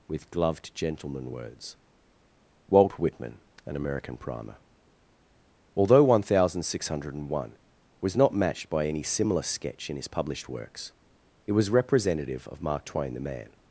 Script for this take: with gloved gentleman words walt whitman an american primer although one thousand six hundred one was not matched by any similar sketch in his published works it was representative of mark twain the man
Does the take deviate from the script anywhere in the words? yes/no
no